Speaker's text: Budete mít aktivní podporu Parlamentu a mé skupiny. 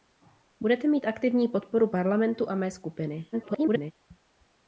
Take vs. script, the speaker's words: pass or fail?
fail